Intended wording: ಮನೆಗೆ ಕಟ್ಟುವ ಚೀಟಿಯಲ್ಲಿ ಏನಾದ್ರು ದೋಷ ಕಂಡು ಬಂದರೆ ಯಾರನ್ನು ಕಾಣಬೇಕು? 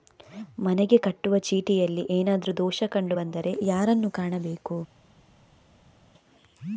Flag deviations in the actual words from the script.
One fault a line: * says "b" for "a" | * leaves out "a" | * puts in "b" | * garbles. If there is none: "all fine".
all fine